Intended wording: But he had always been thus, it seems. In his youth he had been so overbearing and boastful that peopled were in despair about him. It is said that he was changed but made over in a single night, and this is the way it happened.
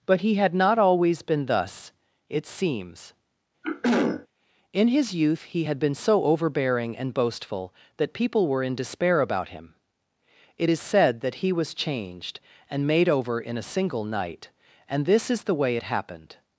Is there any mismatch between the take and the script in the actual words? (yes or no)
yes